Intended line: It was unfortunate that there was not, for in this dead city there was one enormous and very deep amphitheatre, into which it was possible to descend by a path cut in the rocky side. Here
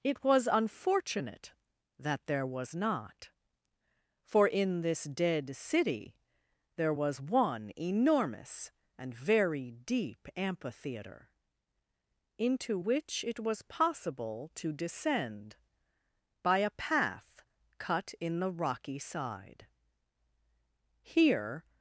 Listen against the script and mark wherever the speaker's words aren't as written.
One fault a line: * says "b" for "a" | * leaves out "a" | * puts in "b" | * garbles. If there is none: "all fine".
all fine